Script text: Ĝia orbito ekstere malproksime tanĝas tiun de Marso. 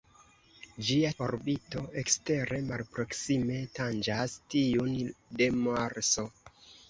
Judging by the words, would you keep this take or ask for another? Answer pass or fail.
pass